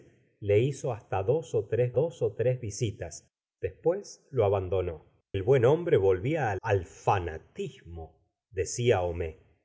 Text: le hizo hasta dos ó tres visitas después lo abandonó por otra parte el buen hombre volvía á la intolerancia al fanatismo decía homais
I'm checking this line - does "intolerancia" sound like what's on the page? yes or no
no